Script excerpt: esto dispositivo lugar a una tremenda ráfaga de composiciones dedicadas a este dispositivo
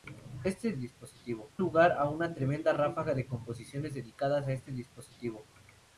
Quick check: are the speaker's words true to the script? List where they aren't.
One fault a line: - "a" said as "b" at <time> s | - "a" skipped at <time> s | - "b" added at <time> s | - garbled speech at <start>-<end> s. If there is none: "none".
none